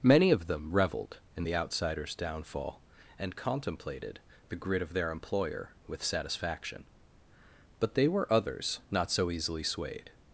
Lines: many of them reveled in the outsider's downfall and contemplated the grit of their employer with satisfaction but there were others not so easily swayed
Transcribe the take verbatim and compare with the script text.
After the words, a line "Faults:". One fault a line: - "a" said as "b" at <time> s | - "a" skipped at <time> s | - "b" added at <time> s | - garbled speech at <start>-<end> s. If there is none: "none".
many of them reveled in the outsider's downfall and contemplated the grit of their employer with satisfaction but they were others not so easily swayed
Faults:
- "there" said as "they" at 7.9 s